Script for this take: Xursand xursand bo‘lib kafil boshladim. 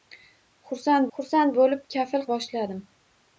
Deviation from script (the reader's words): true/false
false